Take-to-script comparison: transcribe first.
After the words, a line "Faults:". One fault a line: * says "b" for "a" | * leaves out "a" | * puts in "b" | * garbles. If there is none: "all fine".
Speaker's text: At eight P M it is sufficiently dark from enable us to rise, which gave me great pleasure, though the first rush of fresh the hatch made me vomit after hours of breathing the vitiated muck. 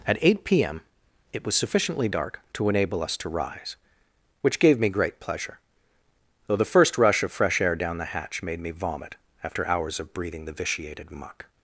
At eight P M it was sufficiently dark to enable us to rise, which gave me great pleasure, though the first rush of fresh air down the hatch made me vomit after hours of breathing the vitiated muck.
Faults:
* says "was" for "is"
* says "to" for "from"
* puts in "air down"